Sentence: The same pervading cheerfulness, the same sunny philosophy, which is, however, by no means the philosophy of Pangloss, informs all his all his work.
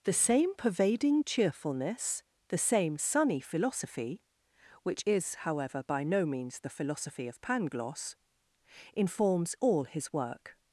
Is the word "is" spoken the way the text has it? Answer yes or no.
yes